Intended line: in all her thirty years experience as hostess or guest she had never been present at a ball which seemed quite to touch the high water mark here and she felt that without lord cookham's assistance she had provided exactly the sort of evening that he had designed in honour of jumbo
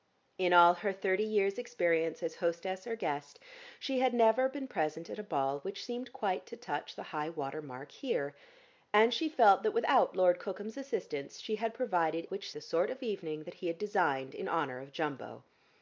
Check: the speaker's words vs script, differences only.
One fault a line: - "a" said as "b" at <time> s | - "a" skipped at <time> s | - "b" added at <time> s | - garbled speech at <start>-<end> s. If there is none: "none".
- "exactly" said as "which" at 12.3 s